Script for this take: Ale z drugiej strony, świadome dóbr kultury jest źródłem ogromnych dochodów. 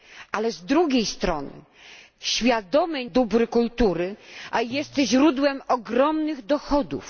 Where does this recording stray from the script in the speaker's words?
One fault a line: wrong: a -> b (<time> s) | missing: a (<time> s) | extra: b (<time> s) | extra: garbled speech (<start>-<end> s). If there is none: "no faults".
no faults